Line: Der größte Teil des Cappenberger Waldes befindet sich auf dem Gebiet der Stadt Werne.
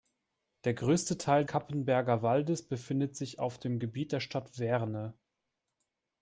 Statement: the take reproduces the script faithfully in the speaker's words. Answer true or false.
false